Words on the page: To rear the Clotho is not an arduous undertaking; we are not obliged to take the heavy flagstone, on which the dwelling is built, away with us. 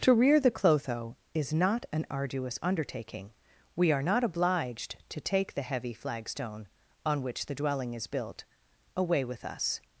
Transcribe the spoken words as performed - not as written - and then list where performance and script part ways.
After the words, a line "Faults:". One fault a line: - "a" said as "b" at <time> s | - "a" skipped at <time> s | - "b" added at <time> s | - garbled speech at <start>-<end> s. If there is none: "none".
To rear the Clotho is not an arduous undertaking; we are not obliged to take the heavy flagstone, on which the dwelling is built, away with us.
Faults:
none